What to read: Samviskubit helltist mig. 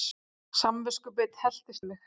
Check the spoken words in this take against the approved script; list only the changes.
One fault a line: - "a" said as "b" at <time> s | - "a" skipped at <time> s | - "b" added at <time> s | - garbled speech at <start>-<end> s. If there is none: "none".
none